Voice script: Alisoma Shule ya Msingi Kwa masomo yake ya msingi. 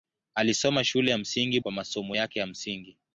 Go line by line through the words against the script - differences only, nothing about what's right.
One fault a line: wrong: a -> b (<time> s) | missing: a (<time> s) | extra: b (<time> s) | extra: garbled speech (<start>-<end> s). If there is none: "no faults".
no faults